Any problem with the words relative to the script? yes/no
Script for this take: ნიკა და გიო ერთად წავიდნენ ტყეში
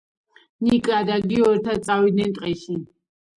no